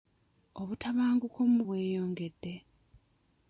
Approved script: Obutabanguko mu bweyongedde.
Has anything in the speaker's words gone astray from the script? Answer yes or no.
no